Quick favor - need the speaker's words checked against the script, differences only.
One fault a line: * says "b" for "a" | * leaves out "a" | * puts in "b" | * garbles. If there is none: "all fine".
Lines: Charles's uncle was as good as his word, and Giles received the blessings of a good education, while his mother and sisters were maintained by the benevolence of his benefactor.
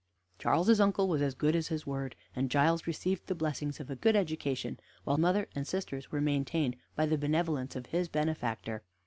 * leaves out "his"